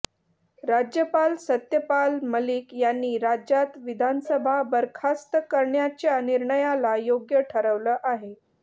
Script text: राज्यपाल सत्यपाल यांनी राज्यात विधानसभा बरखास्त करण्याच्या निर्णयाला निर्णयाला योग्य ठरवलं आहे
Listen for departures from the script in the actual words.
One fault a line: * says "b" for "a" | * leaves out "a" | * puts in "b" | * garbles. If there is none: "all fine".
* puts in "मलिक"
* leaves out "निर्णयाला"